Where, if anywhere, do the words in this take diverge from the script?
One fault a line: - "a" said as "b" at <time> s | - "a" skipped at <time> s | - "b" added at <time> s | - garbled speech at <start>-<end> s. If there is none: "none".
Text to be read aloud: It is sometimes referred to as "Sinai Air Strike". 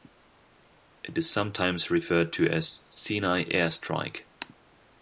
none